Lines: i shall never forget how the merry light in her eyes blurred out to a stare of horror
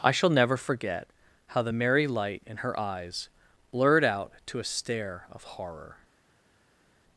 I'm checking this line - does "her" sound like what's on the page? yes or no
yes